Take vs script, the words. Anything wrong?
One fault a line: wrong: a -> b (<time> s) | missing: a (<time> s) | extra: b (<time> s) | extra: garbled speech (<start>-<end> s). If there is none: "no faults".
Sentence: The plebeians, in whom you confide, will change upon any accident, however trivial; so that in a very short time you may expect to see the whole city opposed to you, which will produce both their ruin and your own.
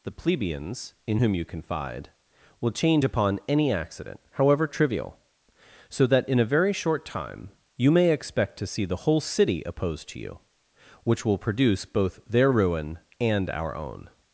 wrong: your -> our (13.5 s)